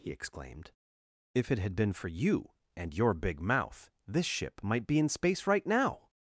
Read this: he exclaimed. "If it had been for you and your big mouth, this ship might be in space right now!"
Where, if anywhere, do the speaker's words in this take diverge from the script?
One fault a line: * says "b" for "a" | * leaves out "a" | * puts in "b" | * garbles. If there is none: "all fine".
all fine